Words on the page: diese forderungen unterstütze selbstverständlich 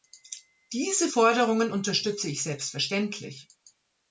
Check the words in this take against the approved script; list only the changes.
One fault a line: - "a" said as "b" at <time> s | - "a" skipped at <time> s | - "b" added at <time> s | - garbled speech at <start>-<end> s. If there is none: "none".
- "ich" added at 2.3 s